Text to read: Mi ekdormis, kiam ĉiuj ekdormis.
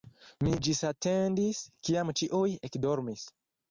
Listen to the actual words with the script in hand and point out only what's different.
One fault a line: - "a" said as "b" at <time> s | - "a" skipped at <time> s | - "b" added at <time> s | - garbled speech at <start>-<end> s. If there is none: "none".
- "ekdormis" said as "ĝisatendis" at 0.7 s